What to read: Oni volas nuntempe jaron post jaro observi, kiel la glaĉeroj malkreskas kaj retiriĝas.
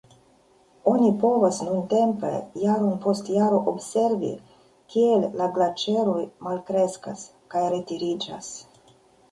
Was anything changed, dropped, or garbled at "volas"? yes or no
yes